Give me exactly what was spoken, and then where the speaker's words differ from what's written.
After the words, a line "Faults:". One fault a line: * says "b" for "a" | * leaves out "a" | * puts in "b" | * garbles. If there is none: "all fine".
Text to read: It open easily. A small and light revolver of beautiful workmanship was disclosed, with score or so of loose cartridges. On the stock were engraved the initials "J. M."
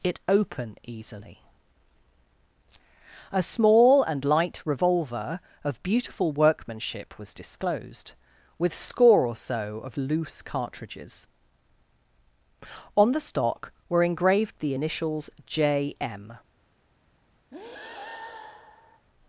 It open easily. A small and light revolver of beautiful workmanship was disclosed, with score or so of loose cartridges. On the stock were engraved the initials "J. M."
Faults:
all fine